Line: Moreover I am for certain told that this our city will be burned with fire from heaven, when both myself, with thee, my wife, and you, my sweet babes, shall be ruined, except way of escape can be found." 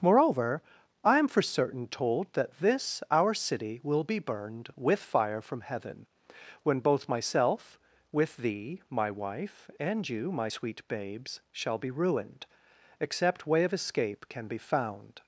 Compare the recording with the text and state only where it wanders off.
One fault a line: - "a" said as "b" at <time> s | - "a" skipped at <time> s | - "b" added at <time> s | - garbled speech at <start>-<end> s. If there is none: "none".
none